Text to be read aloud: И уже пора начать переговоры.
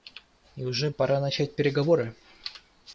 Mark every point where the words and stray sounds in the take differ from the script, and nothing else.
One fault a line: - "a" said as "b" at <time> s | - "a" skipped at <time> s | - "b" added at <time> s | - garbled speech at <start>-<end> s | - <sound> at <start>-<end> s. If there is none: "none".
none